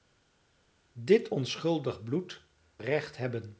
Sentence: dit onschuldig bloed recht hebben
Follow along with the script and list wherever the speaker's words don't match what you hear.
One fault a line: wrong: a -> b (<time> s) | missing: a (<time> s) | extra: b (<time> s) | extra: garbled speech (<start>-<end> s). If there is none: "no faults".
no faults